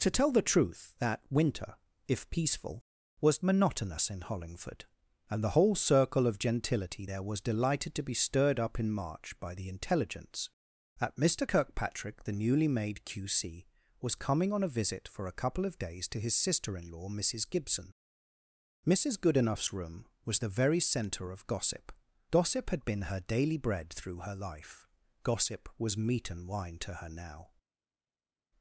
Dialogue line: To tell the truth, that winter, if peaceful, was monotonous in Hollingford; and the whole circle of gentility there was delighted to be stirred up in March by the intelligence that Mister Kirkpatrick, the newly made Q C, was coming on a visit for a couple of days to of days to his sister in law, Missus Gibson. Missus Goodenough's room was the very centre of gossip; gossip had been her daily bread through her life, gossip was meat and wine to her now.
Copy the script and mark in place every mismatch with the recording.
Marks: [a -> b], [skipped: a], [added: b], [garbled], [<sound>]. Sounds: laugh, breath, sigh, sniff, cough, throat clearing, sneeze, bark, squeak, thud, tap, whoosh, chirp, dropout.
To tell the truth, that winter, if peaceful, was monotonous in Hollingford; and the whole circle of gentility there was delighted to be stirred up in March by the intelligence that Mister Kirkpatrick, the newly made Q C, was coming on a visit for a couple of days to [skipped: of days to] his sister in law, Missus Gibson. Missus Goodenough's room was the very centre of gossip; gossip had been her daily bread through her life, gossip was meat and wine to her now.